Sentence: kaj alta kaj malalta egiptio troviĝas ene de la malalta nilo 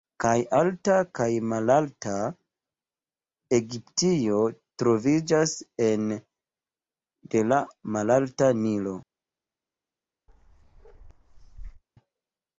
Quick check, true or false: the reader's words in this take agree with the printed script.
true